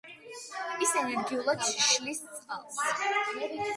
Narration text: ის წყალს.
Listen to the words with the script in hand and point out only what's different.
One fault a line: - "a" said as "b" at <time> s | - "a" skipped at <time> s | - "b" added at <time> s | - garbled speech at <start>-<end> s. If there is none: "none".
- "ენერგიულად შლის" added at 1.0 s